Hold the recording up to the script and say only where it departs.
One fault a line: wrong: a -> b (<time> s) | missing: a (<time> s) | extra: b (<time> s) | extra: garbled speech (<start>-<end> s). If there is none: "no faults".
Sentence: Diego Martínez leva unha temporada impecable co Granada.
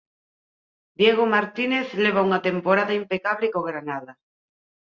no faults